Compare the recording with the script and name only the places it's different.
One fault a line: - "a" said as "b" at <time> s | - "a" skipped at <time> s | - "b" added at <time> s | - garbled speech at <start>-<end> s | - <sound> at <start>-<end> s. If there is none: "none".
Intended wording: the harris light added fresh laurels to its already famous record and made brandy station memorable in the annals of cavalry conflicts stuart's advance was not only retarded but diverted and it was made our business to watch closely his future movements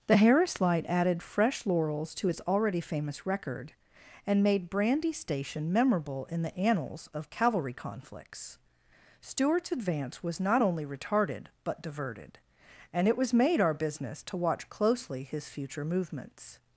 none